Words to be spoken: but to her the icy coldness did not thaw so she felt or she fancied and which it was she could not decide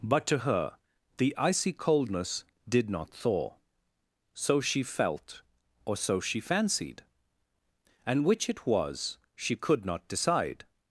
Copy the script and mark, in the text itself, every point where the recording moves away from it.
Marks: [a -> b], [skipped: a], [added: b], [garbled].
but to her the icy coldness did not thaw so she felt or [added: so] she fancied and which it was she could not decide